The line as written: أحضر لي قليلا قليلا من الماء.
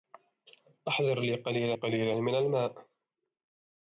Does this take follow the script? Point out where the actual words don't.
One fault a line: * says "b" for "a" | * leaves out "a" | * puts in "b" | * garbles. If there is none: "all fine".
all fine